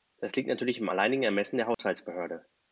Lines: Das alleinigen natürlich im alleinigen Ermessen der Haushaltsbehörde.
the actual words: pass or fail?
fail